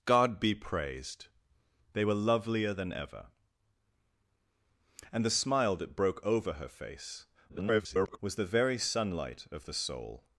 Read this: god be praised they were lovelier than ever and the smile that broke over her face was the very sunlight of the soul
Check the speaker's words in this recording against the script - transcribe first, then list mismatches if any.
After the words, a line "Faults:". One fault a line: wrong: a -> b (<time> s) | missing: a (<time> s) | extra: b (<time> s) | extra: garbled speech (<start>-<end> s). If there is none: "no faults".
god be praised they were lovelier than ever and the smile that broke over her face [garbled] was the very sunlight of the soul
Faults:
extra: garbled speech (7.5-8.2 s)